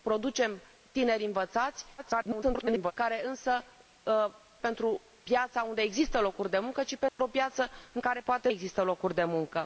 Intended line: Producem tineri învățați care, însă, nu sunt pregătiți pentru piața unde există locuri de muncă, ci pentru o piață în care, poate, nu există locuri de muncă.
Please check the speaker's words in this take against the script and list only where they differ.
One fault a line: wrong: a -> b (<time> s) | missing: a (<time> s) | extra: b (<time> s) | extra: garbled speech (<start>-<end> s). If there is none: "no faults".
extra: garbled speech (2.0-2.9 s)
missing: nu sunt pregătiți (3.6 s)
missing: nu (8.5 s)